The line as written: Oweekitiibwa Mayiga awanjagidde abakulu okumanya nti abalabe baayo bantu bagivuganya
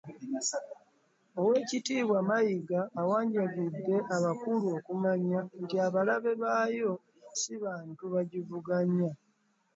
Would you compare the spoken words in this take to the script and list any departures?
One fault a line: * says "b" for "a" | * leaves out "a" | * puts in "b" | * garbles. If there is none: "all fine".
* puts in "si"